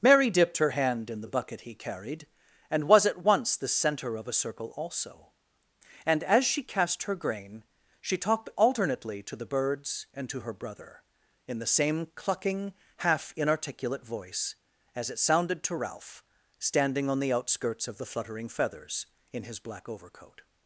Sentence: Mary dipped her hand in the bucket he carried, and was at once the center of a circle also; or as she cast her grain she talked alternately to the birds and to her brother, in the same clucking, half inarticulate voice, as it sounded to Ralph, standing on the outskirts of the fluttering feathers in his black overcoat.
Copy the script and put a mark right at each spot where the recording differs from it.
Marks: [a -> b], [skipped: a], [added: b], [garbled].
Mary dipped her hand in the bucket he carried, and was at once the center of a circle also; [or -> and] as she cast her grain she talked alternately to the birds and to her brother, in the same clucking, half inarticulate voice, as it sounded to Ralph, standing on the outskirts of the fluttering feathers in his black overcoat.